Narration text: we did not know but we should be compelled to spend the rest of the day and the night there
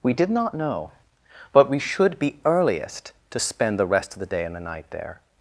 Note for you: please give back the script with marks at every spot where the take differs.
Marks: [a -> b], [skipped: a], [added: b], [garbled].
we did not know but we should be [compelled -> earliest] to spend the rest of the day and the night there